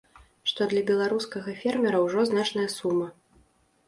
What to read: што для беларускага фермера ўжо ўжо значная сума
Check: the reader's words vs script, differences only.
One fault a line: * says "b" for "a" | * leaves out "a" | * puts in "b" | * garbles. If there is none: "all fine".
* leaves out "ўжо"